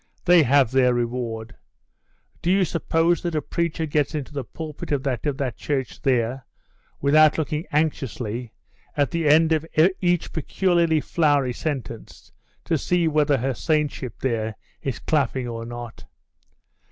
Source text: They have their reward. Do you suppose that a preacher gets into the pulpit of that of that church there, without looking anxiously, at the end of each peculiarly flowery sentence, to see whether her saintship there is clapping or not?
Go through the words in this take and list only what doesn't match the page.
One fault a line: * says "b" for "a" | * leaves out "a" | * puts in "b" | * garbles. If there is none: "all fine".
all fine